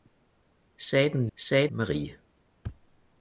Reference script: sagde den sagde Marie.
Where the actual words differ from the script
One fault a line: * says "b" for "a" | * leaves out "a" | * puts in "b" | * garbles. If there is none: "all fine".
all fine